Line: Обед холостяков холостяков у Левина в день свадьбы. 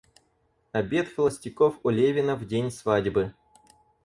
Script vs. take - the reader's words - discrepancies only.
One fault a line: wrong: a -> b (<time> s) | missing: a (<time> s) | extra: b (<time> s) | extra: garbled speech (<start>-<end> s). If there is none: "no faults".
missing: холостяков (1.8 s)